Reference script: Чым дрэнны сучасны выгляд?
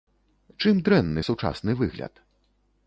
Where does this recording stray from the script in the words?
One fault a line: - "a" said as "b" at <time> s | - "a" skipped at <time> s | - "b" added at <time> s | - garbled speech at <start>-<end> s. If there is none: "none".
none